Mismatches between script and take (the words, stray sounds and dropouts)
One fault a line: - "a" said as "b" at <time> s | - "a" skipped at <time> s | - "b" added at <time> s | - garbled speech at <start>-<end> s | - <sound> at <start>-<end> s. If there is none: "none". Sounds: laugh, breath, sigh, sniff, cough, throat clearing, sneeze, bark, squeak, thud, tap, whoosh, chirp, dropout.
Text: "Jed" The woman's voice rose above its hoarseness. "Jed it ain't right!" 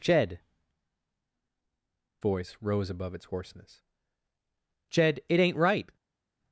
- "The woman's" skipped at 0.4 s